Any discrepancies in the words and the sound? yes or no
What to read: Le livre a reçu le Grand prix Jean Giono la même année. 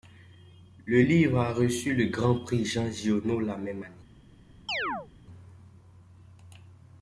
yes